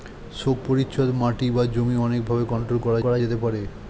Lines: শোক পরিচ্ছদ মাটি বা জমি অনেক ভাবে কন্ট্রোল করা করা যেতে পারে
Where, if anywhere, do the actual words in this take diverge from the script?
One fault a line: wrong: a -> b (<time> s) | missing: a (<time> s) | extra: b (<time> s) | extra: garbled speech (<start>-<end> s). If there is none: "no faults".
no faults